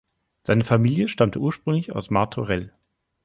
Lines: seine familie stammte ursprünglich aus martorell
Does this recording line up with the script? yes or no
yes